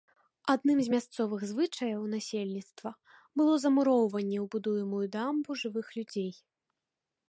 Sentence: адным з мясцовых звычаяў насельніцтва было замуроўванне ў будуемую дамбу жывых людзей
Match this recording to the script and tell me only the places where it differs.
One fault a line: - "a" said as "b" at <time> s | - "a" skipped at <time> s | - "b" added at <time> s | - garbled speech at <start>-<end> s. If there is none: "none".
none